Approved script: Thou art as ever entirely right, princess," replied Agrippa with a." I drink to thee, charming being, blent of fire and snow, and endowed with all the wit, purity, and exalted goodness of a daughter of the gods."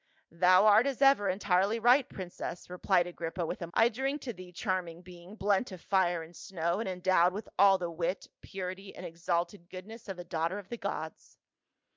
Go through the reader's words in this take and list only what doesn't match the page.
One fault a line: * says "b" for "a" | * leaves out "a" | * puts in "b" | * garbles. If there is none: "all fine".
all fine